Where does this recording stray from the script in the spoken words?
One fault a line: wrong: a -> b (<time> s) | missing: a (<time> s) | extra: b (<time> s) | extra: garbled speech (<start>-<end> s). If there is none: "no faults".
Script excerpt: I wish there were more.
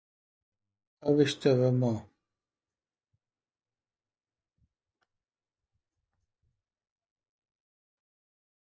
no faults